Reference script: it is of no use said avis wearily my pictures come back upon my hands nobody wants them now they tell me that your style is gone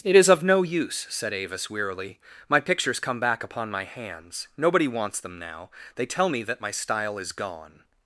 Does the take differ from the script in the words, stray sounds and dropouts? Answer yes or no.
yes